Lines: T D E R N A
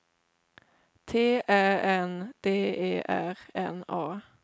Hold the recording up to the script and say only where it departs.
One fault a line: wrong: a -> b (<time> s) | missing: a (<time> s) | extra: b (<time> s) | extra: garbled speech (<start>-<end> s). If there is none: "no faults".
extra: Ä N (1.5 s)